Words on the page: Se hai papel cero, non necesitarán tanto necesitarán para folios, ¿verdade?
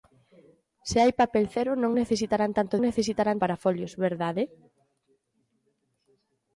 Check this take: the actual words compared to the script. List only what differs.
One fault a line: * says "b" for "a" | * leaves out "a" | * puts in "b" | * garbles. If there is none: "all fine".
all fine